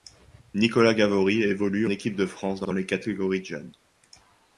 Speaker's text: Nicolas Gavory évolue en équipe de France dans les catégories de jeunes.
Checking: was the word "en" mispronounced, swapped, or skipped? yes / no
yes